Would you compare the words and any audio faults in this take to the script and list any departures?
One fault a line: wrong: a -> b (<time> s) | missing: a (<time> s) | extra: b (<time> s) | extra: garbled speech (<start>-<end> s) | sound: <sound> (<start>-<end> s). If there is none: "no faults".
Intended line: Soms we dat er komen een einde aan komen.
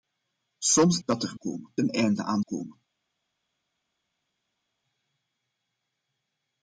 no faults